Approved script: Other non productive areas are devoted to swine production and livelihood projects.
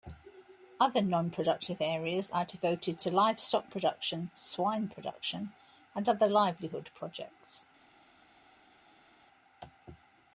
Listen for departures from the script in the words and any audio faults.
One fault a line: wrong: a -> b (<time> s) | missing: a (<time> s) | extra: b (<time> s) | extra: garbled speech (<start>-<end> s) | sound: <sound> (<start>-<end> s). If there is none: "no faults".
extra: livestock production (3.1 s)
extra: other (6.1 s)